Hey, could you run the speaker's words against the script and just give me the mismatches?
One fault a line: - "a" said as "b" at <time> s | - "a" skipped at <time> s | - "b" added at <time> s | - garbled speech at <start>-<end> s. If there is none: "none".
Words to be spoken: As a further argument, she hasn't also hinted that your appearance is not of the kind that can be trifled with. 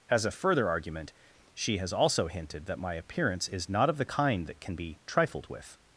- "hasn't" said as "has" at 1.8 s
- "your" said as "my" at 2.8 s